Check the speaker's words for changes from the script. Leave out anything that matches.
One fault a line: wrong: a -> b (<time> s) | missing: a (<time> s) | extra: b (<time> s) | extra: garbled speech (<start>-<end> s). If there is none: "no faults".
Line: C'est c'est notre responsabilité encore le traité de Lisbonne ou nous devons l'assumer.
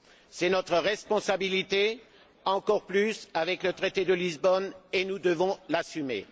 missing: c'est (0.5 s)
extra: plus avec (2.9 s)
wrong: ou -> et (4.9 s)